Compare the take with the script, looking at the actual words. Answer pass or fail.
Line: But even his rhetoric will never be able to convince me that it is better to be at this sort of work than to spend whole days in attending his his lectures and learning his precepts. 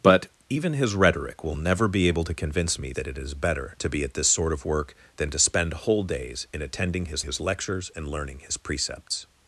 pass